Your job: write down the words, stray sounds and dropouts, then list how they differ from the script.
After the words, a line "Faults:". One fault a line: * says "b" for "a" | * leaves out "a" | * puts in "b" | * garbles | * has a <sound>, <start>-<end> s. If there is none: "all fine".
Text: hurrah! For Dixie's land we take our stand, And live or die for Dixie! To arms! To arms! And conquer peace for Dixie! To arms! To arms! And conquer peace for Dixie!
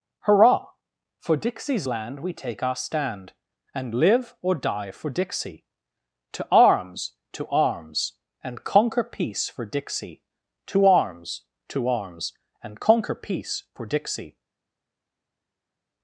hurrah! For Dixie's land we take our stand, And live or die for Dixie! To arms! To arms! And conquer peace for Dixie! To arms! To arms! And conquer peace for Dixie!
Faults:
all fine